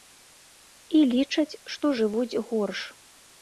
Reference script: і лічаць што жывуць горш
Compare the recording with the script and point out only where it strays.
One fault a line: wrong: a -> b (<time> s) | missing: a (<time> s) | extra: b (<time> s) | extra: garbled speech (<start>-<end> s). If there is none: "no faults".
no faults